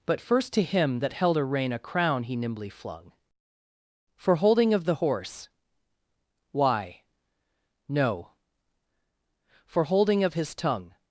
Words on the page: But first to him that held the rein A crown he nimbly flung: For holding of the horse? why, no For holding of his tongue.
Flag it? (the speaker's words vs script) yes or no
yes